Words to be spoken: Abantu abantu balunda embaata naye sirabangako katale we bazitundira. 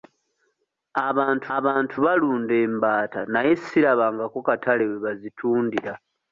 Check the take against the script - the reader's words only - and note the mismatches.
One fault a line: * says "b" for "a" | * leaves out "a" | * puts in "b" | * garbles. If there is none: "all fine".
all fine